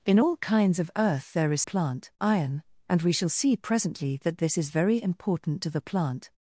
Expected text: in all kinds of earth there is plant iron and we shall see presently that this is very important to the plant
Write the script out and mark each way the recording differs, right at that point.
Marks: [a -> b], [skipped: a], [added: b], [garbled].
in all kinds of earth there is plant iron and we shall see presently that this is very important to the plant